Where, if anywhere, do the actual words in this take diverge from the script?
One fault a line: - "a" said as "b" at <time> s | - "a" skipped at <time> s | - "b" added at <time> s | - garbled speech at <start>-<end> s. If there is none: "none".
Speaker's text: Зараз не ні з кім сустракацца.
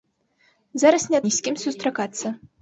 none